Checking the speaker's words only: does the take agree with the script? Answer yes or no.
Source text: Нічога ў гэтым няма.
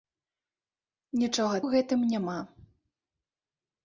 yes